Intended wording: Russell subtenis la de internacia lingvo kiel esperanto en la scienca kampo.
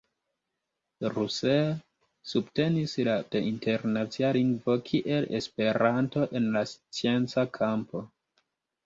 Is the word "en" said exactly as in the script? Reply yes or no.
yes